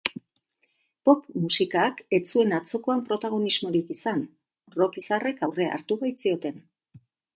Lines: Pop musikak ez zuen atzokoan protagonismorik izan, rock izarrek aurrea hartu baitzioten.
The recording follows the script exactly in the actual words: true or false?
true